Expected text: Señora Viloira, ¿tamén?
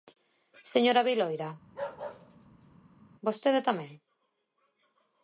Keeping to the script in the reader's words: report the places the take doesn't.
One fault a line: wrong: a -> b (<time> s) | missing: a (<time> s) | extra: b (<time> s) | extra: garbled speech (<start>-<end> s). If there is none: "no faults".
extra: vostede (3.3 s)